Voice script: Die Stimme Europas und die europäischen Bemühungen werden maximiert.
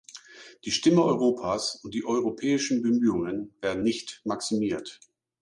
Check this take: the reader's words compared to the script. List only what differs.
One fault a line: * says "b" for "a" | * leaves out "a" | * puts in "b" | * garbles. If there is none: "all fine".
* puts in "nicht"